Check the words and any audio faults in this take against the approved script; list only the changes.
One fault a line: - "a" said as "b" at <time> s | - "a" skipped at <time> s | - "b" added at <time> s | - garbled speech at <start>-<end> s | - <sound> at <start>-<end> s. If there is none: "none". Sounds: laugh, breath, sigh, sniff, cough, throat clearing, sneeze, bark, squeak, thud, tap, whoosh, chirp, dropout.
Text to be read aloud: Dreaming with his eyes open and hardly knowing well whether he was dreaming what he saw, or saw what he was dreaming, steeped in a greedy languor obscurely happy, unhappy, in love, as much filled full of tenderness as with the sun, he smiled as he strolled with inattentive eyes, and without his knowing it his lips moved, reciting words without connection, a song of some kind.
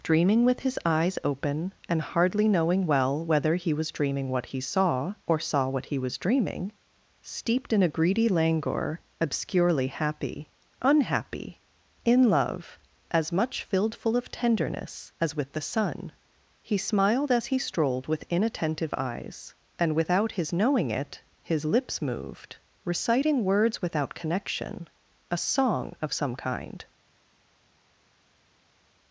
none